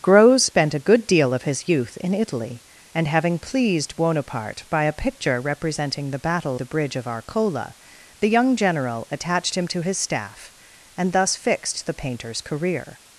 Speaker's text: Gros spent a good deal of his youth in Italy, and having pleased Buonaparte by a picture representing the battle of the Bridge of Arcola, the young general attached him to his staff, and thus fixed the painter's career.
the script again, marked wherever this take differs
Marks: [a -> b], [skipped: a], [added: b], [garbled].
Gros spent a good deal of his youth in Italy, and having pleased Buonaparte by a picture representing the battle [skipped: of] the Bridge of Arcola, the young general attached him to his staff, and thus fixed the painter's career.